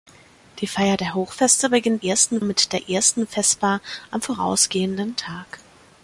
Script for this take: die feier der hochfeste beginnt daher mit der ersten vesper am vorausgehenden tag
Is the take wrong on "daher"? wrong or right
wrong